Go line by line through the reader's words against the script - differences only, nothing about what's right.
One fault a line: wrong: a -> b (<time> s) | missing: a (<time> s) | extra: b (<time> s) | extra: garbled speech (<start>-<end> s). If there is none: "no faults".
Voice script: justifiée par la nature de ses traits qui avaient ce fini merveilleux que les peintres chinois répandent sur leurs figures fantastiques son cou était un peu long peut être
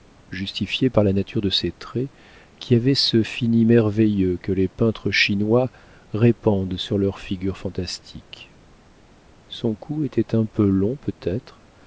no faults